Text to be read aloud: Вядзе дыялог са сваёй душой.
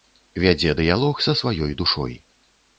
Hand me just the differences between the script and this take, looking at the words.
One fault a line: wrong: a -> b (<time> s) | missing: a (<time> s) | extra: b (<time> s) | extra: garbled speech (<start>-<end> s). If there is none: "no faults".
no faults